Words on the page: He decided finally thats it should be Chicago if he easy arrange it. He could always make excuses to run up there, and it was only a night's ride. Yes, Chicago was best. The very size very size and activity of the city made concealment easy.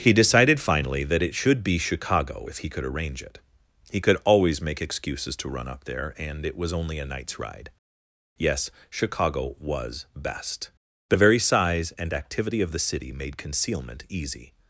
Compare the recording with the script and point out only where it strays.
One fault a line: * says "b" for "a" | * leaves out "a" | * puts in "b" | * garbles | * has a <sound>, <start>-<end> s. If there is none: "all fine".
* says "that" for "thats"
* says "could" for "easy"
* leaves out "very size"